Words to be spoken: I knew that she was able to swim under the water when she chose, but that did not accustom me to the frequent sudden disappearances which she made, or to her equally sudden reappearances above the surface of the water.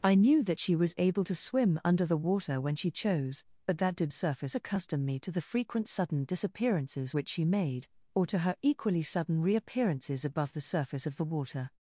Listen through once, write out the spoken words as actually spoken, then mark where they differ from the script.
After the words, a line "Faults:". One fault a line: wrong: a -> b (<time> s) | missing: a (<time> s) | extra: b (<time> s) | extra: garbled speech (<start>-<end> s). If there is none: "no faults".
I knew that she was able to swim under the water when she chose, but that did surface accustom me to the frequent sudden disappearances which she made, or to her equally sudden reappearances above the surface of the water.
Faults:
wrong: not -> surface (4.1 s)